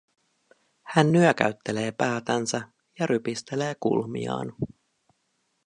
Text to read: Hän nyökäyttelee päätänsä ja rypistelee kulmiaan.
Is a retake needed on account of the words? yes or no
no